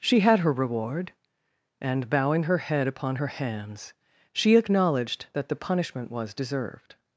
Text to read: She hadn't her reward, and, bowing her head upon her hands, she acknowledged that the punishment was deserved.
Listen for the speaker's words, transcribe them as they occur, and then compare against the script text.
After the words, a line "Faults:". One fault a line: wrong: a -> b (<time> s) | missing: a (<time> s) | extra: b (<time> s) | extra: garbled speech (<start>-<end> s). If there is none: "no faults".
She had her reward, and, bowing her head upon her hands, she acknowledged that the punishment was deserved.
Faults:
wrong: hadn't -> had (0.2 s)